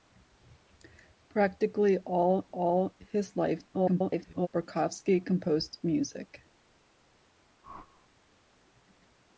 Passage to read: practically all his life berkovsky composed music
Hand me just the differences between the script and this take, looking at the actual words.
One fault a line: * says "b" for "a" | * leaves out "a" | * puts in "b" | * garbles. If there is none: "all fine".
* puts in "all"
* garbles